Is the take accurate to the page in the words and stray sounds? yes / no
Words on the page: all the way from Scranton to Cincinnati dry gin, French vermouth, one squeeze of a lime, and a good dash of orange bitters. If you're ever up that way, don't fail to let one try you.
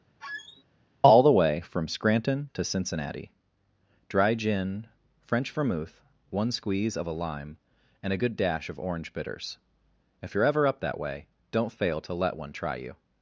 no